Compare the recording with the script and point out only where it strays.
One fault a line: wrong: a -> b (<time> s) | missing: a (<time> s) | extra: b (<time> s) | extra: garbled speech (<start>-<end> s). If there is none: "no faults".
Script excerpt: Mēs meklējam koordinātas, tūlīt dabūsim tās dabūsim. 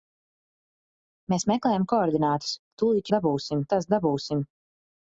no faults